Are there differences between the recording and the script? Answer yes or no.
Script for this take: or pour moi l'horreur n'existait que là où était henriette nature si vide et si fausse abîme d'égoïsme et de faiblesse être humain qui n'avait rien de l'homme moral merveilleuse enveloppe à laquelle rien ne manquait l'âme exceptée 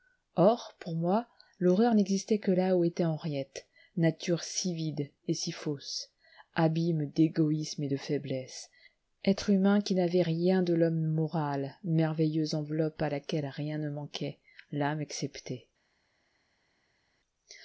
no